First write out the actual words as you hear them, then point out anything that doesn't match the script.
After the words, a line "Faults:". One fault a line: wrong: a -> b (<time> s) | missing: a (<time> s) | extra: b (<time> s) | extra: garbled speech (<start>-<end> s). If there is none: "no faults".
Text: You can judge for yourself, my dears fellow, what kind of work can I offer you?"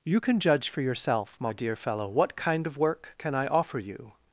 You can judge for yourself, my dear fellow, what kind of work can I offer you?"
Faults:
wrong: dears -> dear (1.5 s)